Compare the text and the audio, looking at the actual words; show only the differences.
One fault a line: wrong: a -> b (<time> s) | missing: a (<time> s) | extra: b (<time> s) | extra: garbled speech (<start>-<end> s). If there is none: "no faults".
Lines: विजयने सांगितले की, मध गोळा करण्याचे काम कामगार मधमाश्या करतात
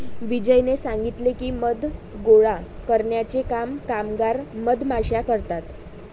no faults